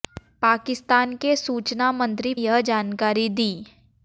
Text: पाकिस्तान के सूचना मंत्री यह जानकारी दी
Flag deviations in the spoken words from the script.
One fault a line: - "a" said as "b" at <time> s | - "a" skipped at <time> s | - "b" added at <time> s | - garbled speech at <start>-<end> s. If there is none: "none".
none